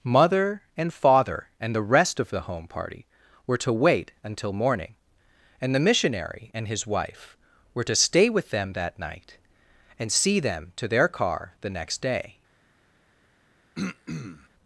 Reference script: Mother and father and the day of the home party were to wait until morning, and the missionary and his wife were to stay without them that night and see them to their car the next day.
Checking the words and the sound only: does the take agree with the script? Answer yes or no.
no